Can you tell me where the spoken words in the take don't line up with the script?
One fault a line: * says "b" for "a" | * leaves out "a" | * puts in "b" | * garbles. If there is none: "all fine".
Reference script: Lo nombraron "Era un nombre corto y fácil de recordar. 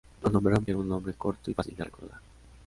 all fine